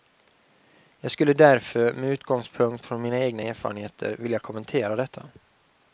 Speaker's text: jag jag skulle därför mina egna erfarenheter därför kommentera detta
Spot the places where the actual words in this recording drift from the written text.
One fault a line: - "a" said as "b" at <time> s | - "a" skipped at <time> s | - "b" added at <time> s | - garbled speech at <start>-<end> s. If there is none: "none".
- "jag" skipped at 1.1 s
- "med utgångspunkt från" added at 1.9 s
- "därför" said as "vilja" at 4.2 s